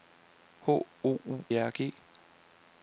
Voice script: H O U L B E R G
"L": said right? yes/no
no